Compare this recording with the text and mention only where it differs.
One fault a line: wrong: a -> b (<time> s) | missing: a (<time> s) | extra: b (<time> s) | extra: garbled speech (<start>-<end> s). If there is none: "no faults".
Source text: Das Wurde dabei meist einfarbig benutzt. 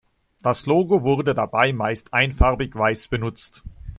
extra: Logo (0.7 s)
extra: weiß (2.7 s)